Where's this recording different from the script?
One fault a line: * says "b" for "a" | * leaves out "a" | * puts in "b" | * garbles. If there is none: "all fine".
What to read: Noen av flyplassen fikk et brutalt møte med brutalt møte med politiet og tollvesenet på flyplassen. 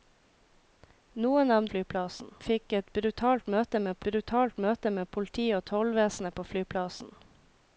all fine